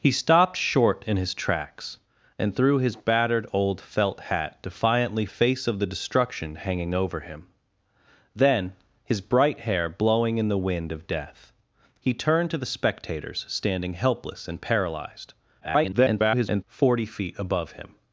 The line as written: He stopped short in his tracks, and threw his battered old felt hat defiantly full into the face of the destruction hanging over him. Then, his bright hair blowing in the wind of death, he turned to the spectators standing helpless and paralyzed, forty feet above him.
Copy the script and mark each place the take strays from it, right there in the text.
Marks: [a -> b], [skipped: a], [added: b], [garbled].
He stopped short in his tracks, and threw his battered old felt hat defiantly [skipped: full into the] face of the destruction hanging over him. Then, his bright hair blowing in the wind of death, he turned to the spectators standing helpless and paralyzed, [garbled] forty feet above him.